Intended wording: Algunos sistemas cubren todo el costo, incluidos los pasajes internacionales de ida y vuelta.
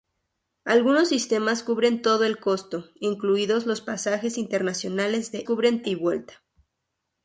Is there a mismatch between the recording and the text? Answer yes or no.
yes